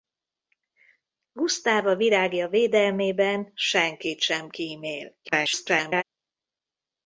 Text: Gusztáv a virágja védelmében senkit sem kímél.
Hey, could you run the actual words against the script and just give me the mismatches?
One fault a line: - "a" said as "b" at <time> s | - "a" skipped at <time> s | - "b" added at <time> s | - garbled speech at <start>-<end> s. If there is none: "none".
- garbled speech at 5.2-6.0 s